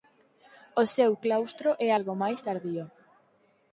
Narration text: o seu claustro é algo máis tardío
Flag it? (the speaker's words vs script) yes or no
no